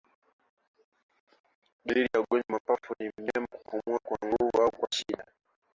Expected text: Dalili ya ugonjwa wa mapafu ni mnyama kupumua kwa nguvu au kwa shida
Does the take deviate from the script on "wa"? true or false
false